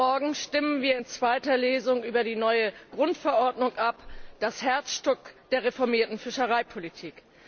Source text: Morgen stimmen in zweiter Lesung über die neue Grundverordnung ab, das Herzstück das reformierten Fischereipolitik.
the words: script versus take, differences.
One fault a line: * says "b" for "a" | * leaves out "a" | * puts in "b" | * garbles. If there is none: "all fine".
* puts in "wir"
* says "der" for "das"